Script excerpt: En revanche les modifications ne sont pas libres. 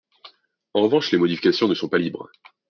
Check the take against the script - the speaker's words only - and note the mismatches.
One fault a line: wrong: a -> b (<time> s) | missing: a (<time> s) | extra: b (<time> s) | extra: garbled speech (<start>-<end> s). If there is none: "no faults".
no faults